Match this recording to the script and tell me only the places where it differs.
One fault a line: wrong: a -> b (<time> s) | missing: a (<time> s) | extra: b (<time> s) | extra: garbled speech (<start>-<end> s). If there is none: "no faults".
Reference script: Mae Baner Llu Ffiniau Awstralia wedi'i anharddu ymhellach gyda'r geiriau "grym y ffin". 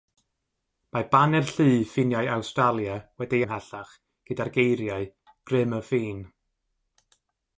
missing: anharddu (3.5 s)